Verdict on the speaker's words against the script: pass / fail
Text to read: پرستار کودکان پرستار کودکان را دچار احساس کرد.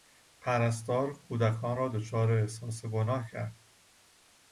fail